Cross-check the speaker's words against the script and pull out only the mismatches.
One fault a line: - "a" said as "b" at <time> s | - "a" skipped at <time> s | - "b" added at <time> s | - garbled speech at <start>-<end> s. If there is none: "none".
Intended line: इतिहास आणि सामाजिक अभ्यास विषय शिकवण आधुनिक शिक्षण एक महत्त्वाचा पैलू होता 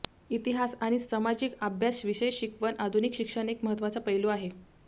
- "होता" said as "आहे" at 4.3 s